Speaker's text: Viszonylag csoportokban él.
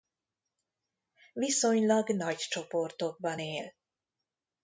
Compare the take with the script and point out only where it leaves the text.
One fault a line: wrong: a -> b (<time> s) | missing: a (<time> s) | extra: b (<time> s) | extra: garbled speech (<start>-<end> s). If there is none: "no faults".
extra: nagy (2.1 s)